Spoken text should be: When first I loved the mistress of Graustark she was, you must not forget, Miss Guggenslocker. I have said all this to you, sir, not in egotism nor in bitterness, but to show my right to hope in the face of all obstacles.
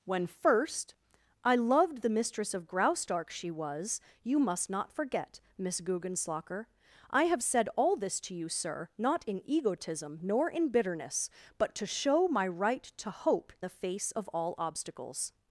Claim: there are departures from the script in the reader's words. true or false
true